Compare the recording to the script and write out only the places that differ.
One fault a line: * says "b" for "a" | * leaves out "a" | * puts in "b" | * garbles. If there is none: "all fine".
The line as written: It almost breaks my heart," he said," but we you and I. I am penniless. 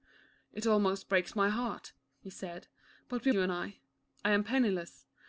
all fine